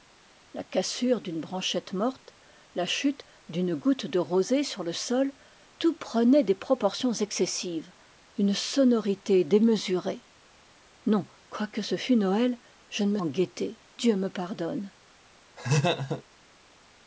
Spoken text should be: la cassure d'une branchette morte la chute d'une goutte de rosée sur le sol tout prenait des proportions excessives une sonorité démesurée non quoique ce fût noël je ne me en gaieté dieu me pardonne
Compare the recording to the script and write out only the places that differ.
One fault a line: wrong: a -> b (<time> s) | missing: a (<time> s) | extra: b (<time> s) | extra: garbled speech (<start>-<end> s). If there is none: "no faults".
no faults